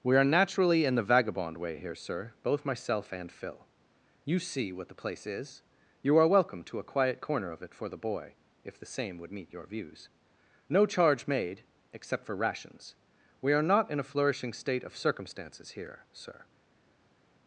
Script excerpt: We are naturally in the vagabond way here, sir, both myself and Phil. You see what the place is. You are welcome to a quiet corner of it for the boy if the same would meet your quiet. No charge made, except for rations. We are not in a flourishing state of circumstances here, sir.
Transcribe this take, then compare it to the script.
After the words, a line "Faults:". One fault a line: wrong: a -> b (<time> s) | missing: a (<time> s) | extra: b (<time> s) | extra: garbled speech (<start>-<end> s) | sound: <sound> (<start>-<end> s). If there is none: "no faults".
We are naturally in the vagabond way here, sir, both myself and Phil. You see what the place is. You are welcome to a quiet corner of it for the boy if the same would meet your views. No charge made, except for rations. We are not in a flourishing state of circumstances here, sir.
Faults:
wrong: quiet -> views (9.7 s)